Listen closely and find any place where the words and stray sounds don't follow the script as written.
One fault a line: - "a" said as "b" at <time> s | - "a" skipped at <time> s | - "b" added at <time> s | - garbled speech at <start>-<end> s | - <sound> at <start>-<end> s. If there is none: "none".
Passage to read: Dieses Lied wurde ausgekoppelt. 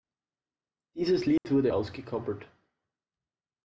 - dropout at 1.4-1.4 s